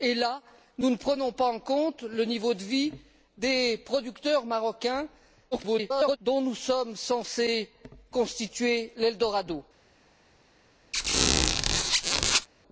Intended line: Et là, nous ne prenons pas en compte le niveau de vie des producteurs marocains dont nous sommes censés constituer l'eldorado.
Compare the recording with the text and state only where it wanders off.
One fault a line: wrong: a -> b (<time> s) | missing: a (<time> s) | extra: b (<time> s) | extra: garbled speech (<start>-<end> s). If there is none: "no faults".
extra: garbled speech (5.5-6.2 s)